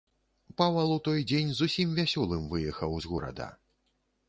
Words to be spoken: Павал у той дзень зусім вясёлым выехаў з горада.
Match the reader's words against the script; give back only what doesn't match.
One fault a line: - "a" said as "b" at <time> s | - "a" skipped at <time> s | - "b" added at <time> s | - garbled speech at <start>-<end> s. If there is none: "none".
none